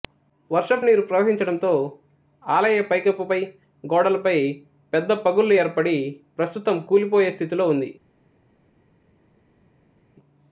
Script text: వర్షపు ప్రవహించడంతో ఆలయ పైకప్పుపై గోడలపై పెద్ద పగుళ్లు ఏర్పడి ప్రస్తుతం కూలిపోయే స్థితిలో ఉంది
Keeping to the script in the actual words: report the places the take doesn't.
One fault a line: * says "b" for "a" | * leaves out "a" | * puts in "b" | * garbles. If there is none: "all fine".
* puts in "నీరు"